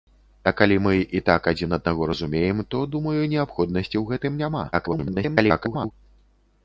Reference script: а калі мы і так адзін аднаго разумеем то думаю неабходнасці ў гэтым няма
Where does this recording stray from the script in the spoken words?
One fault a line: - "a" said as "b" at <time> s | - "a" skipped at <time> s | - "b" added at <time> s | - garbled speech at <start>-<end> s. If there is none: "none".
- garbled speech at 4.7-5.9 s